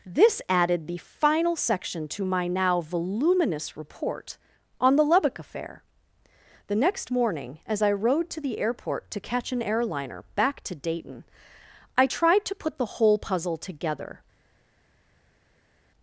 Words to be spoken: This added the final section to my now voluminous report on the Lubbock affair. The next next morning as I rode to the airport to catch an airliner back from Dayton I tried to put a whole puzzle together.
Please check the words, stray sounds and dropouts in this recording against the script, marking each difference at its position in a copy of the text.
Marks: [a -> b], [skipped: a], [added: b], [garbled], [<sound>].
This added the final section to my now voluminous report on the Lubbock affair. The next [skipped: next] morning as I rode to the airport to catch an airliner back [from -> to] Dayton I tried to put [a -> the] whole puzzle together.